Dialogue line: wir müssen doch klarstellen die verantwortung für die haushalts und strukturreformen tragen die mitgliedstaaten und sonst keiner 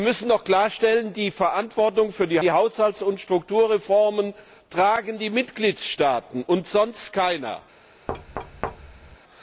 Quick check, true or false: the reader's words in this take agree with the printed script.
false